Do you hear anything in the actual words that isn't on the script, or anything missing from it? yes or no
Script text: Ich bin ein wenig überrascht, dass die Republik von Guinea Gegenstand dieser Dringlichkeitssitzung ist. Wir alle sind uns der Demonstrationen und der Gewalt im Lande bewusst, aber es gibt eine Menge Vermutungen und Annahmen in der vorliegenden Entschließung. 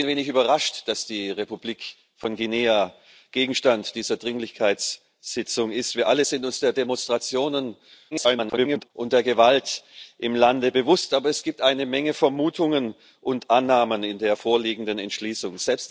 yes